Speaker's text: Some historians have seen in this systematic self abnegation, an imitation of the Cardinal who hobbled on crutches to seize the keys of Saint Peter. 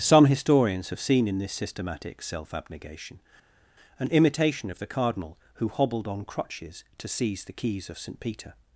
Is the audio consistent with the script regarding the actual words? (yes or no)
yes